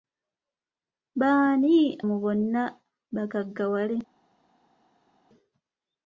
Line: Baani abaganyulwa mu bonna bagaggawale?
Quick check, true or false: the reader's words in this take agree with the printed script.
false